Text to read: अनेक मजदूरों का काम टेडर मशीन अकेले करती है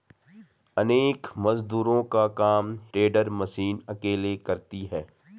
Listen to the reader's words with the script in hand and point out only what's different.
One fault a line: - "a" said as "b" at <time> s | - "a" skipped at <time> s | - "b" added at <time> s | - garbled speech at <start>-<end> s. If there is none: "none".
none